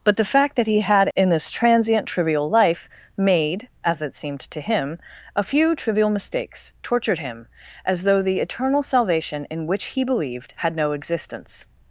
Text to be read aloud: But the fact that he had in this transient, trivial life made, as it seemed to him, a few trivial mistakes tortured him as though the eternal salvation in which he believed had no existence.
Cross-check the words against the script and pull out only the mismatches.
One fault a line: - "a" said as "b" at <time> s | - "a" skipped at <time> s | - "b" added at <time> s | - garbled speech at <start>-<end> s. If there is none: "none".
none